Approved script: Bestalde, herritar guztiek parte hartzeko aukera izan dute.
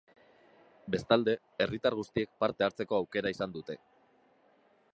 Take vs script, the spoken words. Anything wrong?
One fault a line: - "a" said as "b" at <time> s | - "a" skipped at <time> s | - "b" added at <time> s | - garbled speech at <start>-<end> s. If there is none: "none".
none